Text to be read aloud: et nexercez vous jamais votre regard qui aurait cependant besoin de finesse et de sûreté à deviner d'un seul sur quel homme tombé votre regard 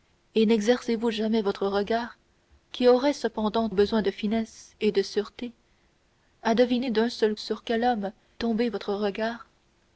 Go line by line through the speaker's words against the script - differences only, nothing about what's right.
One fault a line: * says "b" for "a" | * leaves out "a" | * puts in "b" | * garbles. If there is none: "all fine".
all fine